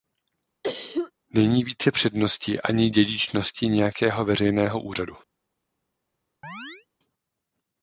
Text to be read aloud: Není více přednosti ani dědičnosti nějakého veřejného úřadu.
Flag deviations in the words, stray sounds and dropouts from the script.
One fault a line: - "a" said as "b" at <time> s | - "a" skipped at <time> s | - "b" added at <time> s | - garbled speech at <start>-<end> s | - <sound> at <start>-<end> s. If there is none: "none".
- cough at 0.6-1.1 s
- chirp at 6.4-6.9 s